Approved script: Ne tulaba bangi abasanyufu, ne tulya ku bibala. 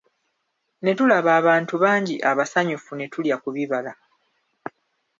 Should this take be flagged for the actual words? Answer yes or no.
yes